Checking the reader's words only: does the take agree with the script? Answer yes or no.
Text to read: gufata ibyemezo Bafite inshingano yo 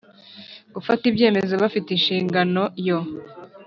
yes